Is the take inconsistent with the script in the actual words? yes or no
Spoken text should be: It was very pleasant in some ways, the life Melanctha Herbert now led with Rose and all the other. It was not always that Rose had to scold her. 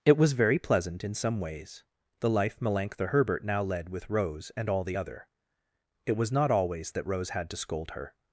no